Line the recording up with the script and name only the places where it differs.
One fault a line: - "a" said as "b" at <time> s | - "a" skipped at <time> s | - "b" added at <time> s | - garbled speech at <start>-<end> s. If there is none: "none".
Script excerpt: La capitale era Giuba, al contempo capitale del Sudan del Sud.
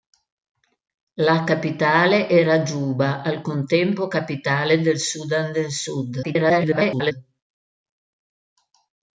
- garbled speech at 6.2-7.1 s